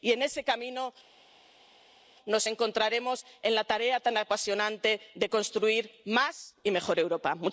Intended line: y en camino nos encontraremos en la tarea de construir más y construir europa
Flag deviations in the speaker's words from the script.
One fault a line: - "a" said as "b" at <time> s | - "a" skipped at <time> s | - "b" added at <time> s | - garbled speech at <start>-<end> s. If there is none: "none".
- "ese" added at 0.2 s
- "tan apasionante" added at 4.0 s
- "construir" said as "mejor" at 6.7 s